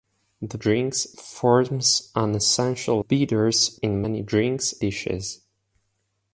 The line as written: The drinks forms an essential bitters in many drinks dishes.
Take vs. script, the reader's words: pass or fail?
pass